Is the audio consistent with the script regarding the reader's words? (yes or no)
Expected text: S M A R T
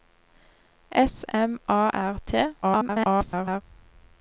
no